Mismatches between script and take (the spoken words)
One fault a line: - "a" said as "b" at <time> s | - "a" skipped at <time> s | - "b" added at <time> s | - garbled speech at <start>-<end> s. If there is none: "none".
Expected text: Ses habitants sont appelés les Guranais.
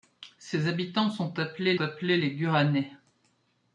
- "appelés" added at 1.8 s